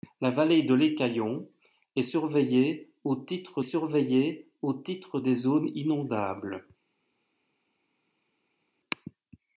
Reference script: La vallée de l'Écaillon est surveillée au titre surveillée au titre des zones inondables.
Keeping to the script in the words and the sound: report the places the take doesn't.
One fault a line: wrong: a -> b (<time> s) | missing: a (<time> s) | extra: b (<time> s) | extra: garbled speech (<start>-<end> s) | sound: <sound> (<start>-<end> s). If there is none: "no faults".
no faults